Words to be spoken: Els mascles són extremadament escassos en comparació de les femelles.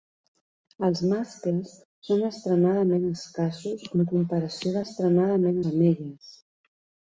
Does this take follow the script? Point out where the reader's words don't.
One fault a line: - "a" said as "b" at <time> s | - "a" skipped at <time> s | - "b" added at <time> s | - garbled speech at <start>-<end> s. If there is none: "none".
- "les" said as "extremadament" at 4.8 s